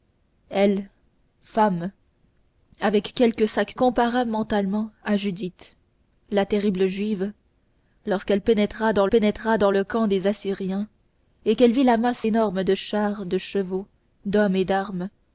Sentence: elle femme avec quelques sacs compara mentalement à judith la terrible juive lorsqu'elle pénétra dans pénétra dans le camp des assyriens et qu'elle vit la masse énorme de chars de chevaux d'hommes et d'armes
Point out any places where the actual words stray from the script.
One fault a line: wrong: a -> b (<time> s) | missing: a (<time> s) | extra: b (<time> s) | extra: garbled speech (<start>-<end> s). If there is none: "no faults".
no faults